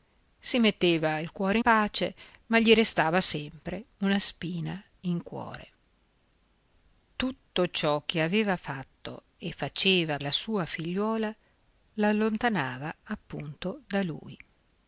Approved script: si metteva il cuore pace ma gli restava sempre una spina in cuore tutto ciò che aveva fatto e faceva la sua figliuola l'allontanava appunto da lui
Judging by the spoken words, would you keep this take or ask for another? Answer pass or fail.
pass